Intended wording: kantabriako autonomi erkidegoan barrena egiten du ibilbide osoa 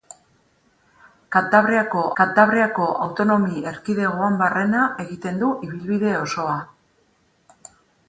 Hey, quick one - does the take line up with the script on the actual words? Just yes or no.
no